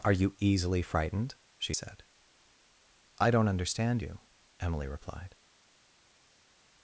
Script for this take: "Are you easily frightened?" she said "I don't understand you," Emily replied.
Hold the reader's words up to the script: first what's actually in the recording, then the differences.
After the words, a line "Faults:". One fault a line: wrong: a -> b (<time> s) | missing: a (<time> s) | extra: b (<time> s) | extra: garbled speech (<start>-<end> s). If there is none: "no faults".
"Are you easily frightened?" she said "I don't understand you," Emily replied.
Faults:
no faults